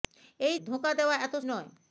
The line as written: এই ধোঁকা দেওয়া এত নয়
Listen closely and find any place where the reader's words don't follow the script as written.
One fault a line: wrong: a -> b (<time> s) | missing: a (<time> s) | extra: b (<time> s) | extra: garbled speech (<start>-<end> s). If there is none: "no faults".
no faults